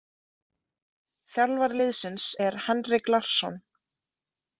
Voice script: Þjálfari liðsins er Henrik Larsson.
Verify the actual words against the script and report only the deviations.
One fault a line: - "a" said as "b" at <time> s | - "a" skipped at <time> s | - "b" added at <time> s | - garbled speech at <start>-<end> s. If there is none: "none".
none